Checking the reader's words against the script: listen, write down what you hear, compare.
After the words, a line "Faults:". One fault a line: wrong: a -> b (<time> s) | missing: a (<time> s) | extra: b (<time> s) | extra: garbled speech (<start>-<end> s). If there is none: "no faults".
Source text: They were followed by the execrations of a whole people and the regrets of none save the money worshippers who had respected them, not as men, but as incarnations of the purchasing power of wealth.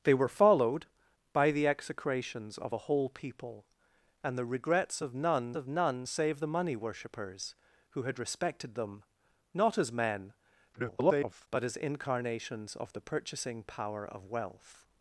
They were followed by the execrations of a whole people and the regrets of none of none save the money worshippers who had respected them, not as men, [garbled] but as incarnations of the purchasing power of wealth.
Faults:
extra: of none (5.5 s)
extra: garbled speech (10.7-11.5 s)